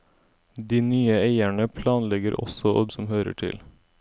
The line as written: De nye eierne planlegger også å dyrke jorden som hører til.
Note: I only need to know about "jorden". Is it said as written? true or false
false